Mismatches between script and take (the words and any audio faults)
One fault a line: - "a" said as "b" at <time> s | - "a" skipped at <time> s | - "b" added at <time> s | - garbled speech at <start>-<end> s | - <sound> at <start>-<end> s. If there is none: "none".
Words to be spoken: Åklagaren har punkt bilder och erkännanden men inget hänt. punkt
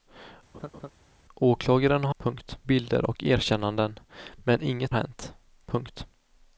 - laugh at 0.5-0.9 s